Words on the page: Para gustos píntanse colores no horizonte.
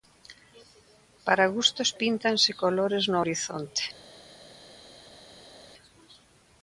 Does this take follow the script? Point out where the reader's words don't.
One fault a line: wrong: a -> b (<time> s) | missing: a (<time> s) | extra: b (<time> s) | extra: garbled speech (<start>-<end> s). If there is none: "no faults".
no faults